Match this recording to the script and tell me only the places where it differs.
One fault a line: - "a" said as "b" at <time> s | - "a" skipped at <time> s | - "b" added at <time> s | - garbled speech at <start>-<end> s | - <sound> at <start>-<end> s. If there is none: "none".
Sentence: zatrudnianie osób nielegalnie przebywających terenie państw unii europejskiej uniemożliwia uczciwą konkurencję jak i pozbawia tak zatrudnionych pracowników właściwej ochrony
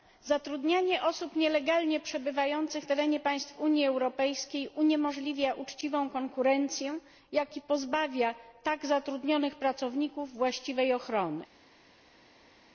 none